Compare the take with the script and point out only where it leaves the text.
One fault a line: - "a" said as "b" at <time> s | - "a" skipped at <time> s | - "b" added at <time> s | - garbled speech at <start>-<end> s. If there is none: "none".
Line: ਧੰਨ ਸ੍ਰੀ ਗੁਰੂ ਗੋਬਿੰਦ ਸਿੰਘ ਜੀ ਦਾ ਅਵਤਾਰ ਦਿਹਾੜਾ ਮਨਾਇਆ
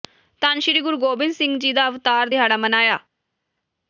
none